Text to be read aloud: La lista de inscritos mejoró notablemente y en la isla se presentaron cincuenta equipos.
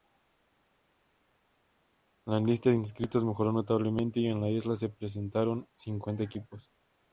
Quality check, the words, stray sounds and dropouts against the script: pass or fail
pass